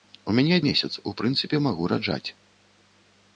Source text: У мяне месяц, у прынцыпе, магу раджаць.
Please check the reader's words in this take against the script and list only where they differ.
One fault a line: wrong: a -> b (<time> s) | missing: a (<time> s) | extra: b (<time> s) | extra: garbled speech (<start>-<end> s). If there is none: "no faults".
no faults